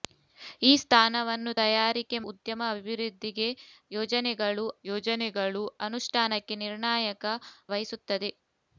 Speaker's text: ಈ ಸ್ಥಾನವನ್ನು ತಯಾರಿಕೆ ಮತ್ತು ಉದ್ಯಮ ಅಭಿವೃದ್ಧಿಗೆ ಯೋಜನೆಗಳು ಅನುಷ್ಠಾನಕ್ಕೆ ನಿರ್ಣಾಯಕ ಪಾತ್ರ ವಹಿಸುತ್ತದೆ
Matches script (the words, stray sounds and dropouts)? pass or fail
fail